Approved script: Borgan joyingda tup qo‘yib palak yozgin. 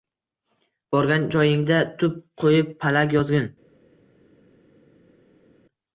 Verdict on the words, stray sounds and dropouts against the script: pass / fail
pass